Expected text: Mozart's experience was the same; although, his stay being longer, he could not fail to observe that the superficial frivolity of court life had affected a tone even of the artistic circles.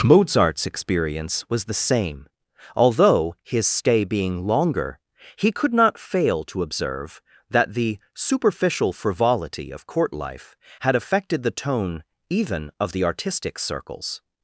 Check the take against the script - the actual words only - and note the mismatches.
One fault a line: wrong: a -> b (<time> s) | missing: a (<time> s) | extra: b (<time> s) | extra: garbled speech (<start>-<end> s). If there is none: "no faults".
wrong: a -> the (11.4 s)